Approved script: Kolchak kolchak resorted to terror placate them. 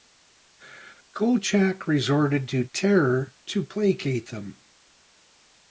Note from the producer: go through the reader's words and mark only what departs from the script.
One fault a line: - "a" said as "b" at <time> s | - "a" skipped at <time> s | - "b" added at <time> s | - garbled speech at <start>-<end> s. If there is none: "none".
- "kolchak" skipped at 1.9 s
- "to" added at 3.5 s